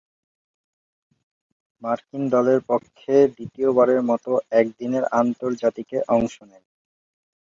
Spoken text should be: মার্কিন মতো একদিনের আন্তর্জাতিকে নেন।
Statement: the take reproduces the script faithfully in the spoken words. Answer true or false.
false